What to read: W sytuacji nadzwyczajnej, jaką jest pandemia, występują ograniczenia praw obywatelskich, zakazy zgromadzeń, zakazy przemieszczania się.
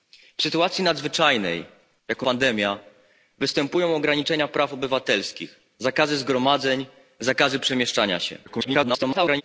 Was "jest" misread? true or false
true